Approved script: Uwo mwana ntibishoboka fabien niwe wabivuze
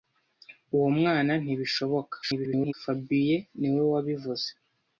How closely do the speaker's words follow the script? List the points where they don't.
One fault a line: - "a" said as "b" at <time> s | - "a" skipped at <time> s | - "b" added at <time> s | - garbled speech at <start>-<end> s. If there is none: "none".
- garbled speech at 2.2-2.7 s